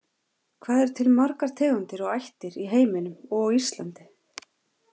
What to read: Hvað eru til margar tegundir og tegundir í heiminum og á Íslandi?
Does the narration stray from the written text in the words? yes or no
yes